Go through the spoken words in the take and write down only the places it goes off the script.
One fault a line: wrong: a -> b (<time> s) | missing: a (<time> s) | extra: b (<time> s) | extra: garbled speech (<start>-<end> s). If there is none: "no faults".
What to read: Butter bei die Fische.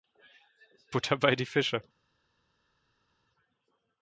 no faults